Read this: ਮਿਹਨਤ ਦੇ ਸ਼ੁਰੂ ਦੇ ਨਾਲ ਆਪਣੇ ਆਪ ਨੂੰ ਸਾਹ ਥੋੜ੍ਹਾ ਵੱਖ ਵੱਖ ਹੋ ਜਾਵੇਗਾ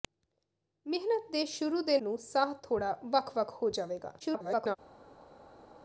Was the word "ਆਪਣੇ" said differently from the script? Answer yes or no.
yes